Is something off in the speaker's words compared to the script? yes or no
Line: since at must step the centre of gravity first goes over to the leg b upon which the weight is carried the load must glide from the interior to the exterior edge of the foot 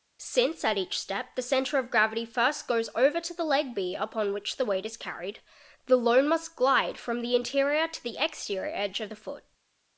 yes